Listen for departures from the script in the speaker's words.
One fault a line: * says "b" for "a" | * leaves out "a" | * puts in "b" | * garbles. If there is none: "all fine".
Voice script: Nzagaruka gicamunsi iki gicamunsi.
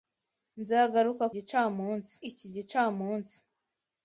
all fine